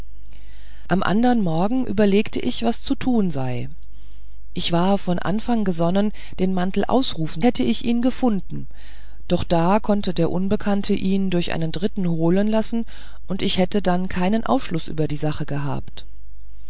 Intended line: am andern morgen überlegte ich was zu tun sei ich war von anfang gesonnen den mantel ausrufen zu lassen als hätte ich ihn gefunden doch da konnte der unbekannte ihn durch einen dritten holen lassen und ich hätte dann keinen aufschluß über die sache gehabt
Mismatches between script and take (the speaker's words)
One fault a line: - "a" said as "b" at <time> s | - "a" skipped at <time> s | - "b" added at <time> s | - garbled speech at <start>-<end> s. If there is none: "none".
- "zu lassen als" skipped at 7.4 s